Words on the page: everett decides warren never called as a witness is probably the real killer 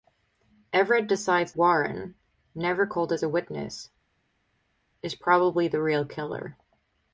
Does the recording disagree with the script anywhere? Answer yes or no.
no